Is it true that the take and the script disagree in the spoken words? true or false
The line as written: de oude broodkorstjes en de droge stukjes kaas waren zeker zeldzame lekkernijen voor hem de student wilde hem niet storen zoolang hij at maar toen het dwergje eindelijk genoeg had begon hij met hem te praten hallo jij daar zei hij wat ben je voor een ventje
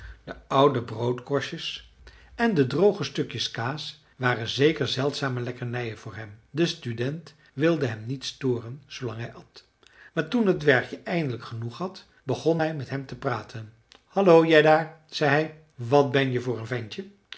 false